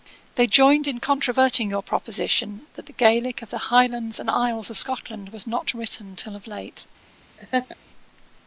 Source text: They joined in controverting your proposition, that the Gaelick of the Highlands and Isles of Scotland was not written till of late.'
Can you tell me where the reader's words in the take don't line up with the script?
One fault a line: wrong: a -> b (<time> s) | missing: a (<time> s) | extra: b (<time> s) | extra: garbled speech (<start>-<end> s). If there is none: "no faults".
no faults